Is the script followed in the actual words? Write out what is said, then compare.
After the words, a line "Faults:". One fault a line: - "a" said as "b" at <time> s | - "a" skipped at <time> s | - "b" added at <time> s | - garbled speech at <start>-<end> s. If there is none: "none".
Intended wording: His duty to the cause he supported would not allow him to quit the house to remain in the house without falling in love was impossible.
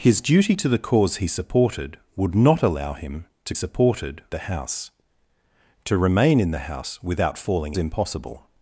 His duty to the cause he supported would not allow him to supported the house to remain in the house without falling impossible.
Faults:
- "quit" said as "supported" at 3.5 s
- "in love was" skipped at 7.7 s